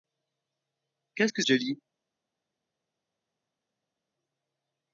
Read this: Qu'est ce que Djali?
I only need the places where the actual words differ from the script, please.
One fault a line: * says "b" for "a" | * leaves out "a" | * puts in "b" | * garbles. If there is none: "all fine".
all fine